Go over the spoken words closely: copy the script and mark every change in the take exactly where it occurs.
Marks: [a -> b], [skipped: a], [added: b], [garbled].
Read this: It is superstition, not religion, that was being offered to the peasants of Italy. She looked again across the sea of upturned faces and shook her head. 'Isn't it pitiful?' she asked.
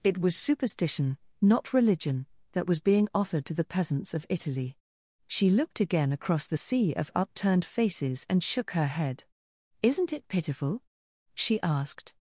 It [is -> was] superstition, not religion, that was being offered to the peasants of Italy. She looked again across the sea of upturned faces and shook her head. 'Isn't it pitiful?' she asked.